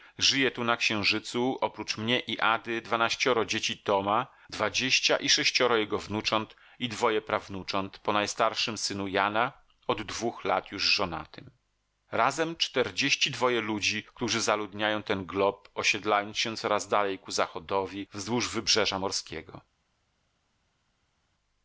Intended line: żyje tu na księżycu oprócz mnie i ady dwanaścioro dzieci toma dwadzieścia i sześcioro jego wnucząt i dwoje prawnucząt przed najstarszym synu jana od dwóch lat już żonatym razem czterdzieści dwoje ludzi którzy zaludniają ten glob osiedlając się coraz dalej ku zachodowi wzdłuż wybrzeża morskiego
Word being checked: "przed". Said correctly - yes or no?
no